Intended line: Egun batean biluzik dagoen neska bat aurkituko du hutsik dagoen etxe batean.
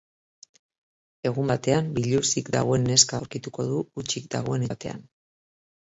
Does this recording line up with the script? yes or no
no